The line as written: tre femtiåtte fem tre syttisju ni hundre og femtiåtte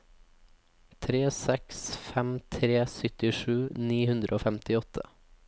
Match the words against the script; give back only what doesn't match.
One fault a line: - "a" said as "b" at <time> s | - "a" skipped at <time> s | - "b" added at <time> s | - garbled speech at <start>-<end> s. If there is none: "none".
- "femtiåtte" said as "seks" at 1.4 s